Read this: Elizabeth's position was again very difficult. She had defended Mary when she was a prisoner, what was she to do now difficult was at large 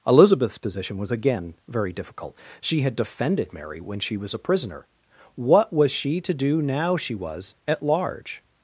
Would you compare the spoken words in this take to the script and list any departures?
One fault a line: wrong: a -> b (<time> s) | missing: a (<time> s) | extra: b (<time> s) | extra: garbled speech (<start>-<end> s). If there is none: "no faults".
wrong: difficult -> she (7.0 s)